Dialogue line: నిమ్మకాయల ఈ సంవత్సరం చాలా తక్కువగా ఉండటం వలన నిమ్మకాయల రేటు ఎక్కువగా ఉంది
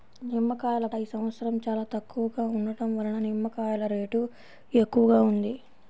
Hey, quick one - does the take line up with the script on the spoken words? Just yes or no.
yes